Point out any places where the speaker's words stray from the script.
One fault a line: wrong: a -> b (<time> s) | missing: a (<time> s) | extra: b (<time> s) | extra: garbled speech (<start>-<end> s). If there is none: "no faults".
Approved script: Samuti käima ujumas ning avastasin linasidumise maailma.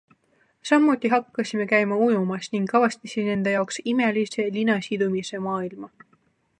extra: hakkasime (1.1 s)
extra: enda jaoks imelise (3.3 s)